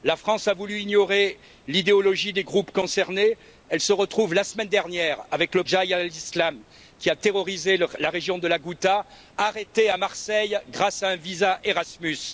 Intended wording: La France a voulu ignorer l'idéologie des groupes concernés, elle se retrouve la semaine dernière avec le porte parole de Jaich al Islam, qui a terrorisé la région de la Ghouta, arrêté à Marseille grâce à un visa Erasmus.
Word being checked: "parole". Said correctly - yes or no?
no